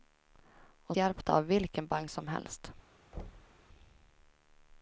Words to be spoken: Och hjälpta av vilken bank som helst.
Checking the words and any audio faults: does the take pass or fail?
fail